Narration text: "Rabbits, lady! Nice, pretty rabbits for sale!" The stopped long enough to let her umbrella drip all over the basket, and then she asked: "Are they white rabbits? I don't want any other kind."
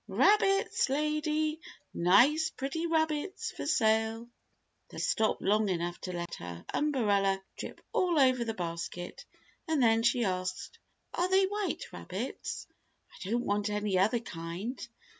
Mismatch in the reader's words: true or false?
false